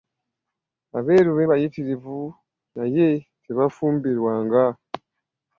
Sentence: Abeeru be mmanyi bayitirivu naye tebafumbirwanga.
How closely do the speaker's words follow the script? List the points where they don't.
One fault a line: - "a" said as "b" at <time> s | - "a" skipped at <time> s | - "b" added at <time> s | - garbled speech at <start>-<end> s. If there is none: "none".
- "mmanyi" skipped at 1.4 s